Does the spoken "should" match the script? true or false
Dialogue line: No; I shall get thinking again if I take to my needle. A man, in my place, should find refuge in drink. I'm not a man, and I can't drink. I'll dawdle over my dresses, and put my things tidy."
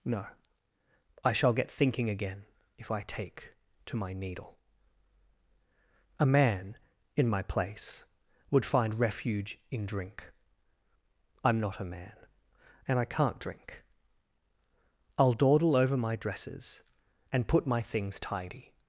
false